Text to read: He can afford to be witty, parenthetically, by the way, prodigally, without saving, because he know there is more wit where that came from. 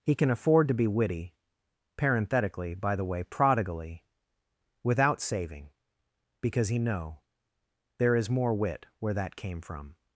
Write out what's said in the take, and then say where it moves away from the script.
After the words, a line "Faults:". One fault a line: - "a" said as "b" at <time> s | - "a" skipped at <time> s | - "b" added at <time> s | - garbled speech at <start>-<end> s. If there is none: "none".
He can afford to be witty, parenthetically, by the way, prodigally, without saving, because he know there is more wit where that came from.
Faults:
none